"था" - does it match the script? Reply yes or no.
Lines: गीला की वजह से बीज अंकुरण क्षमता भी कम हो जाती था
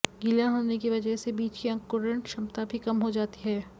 no